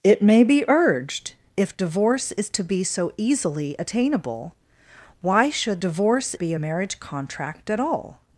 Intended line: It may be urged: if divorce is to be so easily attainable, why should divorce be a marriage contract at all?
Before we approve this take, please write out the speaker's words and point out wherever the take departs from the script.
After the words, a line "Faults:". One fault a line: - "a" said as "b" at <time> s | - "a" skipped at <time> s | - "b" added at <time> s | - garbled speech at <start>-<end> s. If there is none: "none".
It may be urged: if divorce is to be so easily attainable, why should divorce be a marriage contract at all?
Faults:
none